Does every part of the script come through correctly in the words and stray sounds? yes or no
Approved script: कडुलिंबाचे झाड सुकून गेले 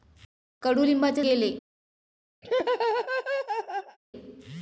no